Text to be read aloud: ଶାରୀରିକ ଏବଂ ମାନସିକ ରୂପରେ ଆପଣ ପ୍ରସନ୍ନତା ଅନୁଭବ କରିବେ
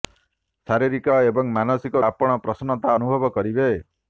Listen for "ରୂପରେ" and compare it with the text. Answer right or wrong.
wrong